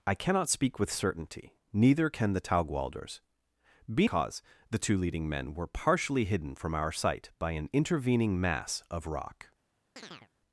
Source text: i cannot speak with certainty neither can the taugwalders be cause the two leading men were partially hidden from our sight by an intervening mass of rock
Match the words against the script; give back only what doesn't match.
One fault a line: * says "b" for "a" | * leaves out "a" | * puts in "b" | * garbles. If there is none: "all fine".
all fine